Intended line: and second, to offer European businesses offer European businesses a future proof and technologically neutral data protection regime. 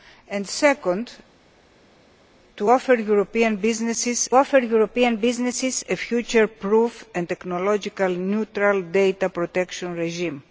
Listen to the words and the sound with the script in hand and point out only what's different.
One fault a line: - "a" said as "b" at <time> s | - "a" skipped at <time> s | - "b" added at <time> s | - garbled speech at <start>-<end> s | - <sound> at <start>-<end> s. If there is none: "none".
none